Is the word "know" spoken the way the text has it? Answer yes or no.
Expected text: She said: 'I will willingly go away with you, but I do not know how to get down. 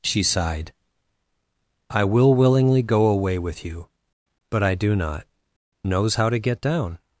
no